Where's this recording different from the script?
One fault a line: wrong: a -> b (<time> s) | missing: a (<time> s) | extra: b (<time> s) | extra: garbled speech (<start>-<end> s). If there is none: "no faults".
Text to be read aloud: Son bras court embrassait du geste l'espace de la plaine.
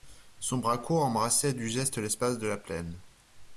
no faults